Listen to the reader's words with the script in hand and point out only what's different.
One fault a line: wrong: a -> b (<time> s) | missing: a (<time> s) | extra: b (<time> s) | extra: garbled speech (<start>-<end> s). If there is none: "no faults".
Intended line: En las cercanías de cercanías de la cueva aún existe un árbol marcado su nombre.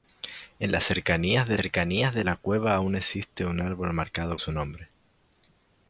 no faults